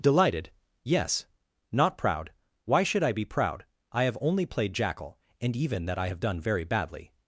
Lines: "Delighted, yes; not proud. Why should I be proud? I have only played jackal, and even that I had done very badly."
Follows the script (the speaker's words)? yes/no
no